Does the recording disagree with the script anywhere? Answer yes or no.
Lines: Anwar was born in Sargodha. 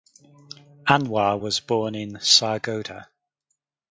no